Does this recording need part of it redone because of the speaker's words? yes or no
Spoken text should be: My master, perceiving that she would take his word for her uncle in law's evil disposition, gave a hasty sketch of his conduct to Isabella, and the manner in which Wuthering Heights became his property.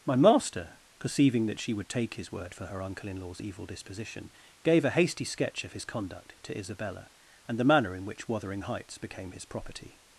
no